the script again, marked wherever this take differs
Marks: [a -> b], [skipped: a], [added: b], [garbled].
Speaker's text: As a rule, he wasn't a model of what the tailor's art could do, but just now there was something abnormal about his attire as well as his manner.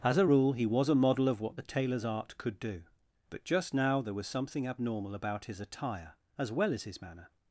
As a rule, he [wasn't -> was] a model of what the tailor's art could do, but just now there was something abnormal about his attire as well as his manner.